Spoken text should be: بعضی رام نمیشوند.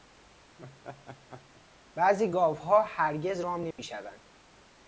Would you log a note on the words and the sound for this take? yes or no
yes